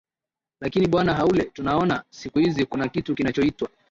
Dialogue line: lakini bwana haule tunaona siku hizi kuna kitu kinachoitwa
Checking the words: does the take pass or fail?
pass